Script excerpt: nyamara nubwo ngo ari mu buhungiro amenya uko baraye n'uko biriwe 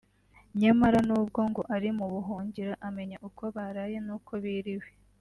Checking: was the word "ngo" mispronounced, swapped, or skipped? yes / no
no